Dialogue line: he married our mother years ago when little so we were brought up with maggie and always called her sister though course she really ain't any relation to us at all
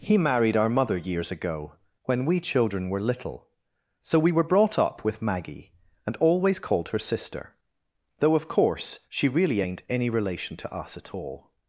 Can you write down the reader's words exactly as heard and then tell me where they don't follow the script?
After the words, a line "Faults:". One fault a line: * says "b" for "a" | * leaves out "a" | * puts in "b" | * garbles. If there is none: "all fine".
he married our mother years ago when we children were little so we were brought up with maggie and always called her sister though of course she really ain't any relation to us at all
Faults:
* puts in "we children were"
* puts in "of"